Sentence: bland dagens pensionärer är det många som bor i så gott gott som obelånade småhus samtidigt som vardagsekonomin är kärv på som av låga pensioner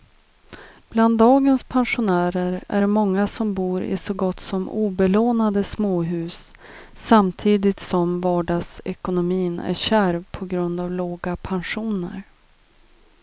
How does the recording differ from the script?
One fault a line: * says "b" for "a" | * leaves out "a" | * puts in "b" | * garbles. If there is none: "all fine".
* leaves out "gott"
* says "grund" for "som"